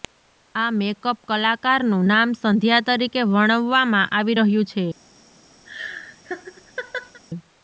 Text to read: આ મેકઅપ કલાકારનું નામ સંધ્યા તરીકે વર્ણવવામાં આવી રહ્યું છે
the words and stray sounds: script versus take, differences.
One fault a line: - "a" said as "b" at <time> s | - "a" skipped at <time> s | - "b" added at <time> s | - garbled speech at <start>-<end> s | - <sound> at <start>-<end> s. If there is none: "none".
- laugh at 5.7-7.2 s